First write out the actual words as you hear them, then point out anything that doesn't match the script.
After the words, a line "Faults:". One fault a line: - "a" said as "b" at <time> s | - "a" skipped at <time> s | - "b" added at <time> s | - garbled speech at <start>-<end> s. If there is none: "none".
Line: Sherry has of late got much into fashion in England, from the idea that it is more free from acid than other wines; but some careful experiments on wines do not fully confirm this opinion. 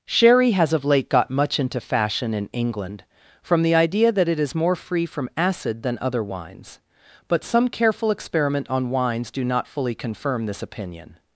Sherry has of late got much into fashion in England, from the idea that it is more free from acid than other wines; but some careful experiment on wines do not fully confirm this opinion.
Faults:
- "experiments" said as "experiment" at 8.1 s